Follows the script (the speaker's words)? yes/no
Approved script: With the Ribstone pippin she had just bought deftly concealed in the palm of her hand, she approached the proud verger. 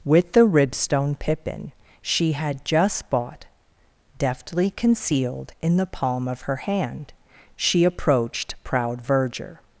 no